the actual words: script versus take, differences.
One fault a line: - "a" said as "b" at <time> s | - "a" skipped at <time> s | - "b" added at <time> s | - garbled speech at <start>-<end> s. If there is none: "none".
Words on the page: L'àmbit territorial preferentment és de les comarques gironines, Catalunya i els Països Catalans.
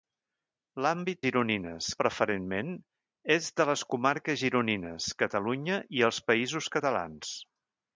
- "territorial" said as "gironines" at 1.3 s